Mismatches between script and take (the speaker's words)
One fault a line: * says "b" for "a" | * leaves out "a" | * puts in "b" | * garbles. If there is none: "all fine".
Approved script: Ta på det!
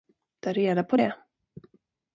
* puts in "reda"